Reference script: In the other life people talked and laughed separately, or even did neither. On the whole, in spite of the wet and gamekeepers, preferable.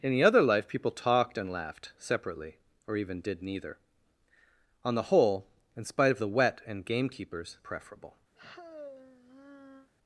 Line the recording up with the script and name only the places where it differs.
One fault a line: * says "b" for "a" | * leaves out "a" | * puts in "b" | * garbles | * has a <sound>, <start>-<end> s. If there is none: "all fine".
* has a sigh, 8.3-9.9 s